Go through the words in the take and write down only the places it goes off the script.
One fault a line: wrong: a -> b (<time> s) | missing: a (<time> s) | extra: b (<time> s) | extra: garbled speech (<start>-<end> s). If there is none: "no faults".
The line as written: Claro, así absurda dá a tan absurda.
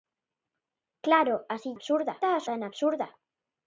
no faults